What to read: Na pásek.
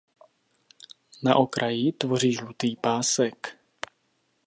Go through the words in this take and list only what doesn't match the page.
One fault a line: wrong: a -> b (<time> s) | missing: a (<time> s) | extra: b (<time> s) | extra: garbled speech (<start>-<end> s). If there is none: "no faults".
extra: okraji tvoří žlutý (1.4 s)